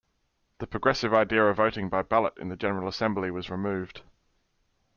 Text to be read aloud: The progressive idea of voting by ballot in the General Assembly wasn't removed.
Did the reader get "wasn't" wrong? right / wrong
wrong